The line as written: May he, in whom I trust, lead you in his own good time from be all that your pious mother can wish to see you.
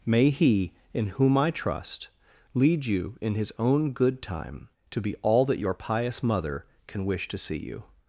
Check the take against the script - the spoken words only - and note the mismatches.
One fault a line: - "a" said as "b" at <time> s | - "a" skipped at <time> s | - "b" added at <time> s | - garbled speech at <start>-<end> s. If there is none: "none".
- "from" said as "to" at 4.9 s